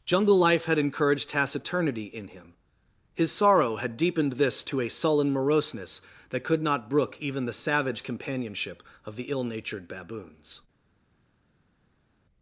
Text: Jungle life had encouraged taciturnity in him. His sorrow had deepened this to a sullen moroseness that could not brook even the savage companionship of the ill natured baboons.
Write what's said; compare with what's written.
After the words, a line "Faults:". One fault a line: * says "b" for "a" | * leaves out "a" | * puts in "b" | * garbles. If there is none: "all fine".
Jungle life had encouraged taciturnity in him. His sorrow had deepened this to a sullen moroseness that could not brook even the savage companionship of the ill natured baboons.
Faults:
all fine